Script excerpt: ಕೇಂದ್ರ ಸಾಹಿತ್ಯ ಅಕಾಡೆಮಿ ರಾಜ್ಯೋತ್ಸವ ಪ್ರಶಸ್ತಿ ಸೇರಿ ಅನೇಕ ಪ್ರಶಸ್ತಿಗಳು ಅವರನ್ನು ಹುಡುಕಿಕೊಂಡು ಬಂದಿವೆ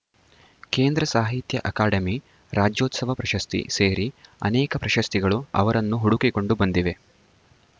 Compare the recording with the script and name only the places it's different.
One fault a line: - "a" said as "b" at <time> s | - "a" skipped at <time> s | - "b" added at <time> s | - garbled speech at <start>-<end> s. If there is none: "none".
none